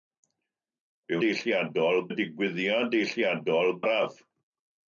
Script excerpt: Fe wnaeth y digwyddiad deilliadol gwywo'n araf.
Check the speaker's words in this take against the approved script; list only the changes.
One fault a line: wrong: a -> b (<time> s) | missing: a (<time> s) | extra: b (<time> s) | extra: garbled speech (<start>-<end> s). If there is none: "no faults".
wrong: wnaeth -> deilliadol (1.2 s)
missing: gwywo'n (3.8 s)